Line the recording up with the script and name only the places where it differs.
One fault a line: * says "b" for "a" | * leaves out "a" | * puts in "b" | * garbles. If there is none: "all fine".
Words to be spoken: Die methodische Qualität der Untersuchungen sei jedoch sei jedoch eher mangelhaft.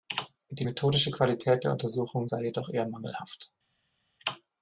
* leaves out "sei jedoch"